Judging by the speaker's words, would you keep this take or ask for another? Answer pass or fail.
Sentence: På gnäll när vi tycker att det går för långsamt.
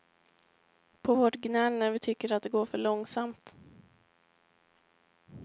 fail